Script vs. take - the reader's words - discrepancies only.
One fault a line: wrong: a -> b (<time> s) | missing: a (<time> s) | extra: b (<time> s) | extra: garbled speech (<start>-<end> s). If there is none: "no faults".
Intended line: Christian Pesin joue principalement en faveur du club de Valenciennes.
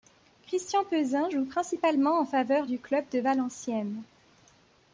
no faults